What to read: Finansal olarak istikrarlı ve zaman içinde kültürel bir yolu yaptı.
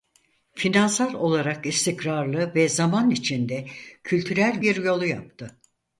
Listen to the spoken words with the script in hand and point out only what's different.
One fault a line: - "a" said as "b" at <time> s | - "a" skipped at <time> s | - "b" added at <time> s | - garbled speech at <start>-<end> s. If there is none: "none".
none